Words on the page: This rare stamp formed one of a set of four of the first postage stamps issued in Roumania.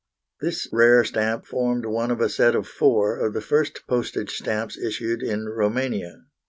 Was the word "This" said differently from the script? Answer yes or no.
no